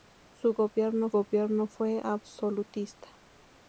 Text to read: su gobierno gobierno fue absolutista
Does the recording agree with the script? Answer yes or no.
yes